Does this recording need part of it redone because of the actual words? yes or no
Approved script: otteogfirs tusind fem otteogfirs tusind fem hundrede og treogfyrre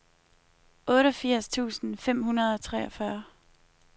yes